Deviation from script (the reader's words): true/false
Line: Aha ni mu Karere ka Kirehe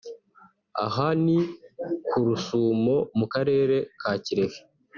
true